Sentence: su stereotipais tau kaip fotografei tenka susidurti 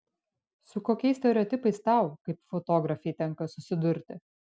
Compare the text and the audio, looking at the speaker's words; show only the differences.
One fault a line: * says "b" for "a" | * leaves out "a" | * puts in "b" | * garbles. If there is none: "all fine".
* puts in "kokiais"